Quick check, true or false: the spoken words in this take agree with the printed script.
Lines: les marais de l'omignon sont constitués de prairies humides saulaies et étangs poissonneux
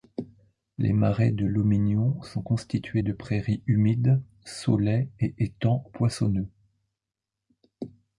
true